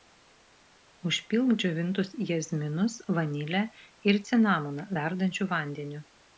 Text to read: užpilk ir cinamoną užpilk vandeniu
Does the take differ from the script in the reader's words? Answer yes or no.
yes